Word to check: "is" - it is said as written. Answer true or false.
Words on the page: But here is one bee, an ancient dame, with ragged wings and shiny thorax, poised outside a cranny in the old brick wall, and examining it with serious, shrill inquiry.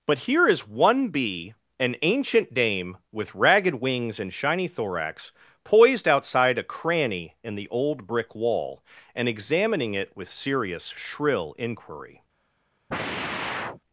true